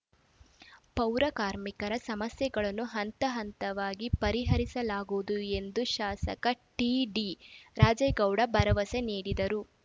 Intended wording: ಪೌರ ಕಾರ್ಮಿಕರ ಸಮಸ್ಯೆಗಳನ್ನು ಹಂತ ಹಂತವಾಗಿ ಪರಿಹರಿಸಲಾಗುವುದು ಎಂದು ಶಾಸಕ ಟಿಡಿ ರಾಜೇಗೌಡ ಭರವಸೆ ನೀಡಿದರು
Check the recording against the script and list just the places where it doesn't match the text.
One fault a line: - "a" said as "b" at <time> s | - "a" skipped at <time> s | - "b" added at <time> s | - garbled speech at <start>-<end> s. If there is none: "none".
none